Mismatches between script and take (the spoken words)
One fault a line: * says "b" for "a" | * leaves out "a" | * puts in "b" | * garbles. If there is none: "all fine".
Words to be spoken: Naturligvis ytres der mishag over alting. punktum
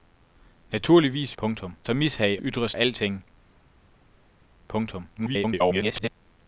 * says "punktum" for "ytres"
* says "ytres" for "over"
* garbles